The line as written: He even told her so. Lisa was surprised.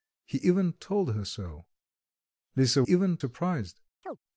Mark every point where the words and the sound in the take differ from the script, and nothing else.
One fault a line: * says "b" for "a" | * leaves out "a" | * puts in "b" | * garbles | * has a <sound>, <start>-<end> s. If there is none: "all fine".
* says "even" for "was"
* has a chirp, 4.0-4.2 s